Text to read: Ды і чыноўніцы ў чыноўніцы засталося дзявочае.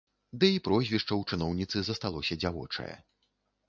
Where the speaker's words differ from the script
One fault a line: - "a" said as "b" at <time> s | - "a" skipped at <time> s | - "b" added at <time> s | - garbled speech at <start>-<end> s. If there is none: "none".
- "чыноўніцы" said as "прозвішча" at 0.7 s